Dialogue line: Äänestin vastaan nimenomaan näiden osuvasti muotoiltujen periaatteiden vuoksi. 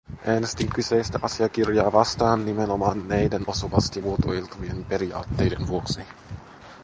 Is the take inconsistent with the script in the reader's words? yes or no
yes